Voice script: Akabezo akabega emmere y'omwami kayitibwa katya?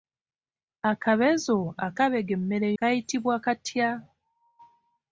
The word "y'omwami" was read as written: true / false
false